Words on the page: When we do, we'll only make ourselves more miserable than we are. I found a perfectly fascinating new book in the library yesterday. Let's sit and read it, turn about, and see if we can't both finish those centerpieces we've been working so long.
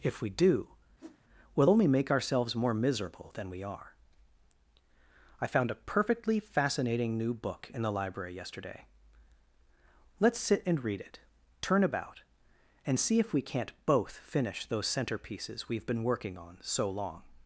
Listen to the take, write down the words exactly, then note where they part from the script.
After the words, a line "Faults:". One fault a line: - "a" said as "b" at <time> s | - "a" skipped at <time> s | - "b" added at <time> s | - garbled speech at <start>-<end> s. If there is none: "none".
If we do, we'll only make ourselves more miserable than we are. I found a perfectly fascinating new book in the library yesterday. Let's sit and read it, turn about, and see if we can't both finish those centerpieces we've been working on so long.
Faults:
- "When" said as "If" at 0.0 s
- "on" added at 16.4 s